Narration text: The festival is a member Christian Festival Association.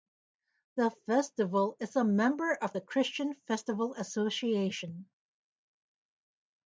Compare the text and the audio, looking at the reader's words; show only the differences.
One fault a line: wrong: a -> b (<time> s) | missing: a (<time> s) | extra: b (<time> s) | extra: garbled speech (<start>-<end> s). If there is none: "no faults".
extra: of the (2.5 s)